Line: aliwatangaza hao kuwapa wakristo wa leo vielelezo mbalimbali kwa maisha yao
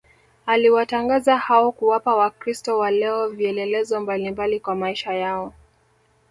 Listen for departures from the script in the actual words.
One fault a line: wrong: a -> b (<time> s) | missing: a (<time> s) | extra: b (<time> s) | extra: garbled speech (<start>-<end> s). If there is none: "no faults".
no faults